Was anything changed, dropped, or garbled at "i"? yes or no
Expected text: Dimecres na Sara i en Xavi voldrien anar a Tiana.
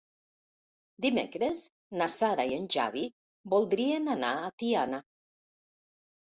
no